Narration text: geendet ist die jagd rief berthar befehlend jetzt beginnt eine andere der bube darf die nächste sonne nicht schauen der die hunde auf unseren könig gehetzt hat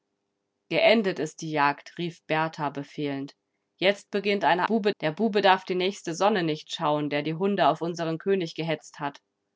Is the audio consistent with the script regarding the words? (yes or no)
no